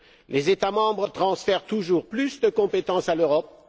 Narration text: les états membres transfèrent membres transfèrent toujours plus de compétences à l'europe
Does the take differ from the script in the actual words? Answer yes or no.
yes